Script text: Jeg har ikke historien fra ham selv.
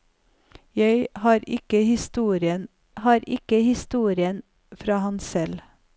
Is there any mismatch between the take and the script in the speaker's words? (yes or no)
yes